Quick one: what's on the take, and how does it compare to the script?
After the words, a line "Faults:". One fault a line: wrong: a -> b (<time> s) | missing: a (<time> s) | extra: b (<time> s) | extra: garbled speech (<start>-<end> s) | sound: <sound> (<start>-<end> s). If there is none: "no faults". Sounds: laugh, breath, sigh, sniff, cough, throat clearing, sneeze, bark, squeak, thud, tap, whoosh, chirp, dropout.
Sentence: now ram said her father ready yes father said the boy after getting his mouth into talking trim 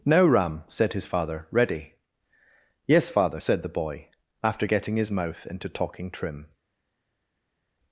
now ram said his father ready yes father said the boy after getting his mouth into talking trim
Faults:
wrong: her -> his (0.9 s)